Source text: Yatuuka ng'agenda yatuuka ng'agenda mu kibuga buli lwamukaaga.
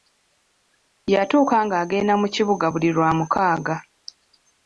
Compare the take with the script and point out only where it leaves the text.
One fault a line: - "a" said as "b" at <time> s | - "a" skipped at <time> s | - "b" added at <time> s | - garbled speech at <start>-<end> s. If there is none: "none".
- "yatuuka ng'agenda" skipped at 2.1 s